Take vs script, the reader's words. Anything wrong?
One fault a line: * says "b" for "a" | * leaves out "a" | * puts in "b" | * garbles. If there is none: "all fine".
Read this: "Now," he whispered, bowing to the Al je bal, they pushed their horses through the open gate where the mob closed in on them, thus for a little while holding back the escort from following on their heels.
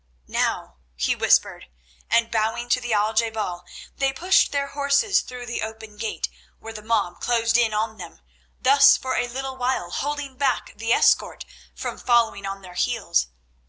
* puts in "and"